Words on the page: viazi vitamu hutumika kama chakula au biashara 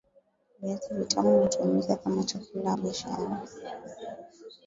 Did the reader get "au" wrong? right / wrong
wrong